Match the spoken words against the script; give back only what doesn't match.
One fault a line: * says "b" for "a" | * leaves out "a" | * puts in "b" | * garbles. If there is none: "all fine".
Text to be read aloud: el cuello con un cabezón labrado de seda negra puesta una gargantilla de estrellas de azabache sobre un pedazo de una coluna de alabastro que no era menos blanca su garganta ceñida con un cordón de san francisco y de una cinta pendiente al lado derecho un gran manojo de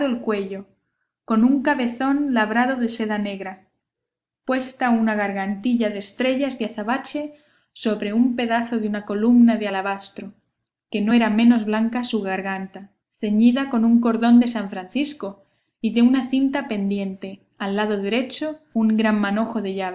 all fine